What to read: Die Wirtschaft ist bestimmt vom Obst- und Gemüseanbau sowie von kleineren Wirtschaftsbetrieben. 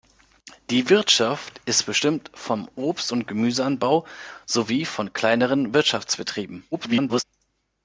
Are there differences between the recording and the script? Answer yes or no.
yes